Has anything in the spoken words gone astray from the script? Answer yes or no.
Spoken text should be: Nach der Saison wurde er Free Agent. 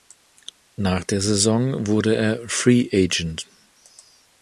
no